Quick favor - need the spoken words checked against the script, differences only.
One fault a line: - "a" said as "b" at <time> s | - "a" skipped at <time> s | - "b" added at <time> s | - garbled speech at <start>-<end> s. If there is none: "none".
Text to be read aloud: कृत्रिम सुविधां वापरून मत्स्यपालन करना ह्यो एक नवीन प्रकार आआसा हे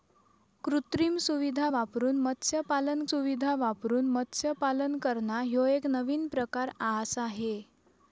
- "सुविधां वापरून मत्स्यपालन" added at 3.1 s